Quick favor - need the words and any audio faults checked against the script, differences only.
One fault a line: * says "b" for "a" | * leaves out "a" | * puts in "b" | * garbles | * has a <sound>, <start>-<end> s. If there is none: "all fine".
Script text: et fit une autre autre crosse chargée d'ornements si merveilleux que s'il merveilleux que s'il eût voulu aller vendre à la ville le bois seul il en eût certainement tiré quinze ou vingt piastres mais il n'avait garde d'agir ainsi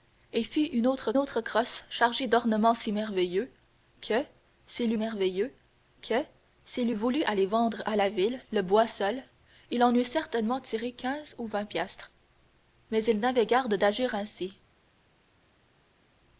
all fine